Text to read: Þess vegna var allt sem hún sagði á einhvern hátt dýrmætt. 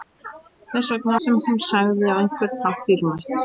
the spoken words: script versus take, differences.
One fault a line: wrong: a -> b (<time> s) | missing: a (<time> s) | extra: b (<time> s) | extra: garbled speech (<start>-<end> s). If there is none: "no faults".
missing: var allt (1.2 s)